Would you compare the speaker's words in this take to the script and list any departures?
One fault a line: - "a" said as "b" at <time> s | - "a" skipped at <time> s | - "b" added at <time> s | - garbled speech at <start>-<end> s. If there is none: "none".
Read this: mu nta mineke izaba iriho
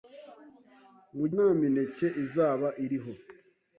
none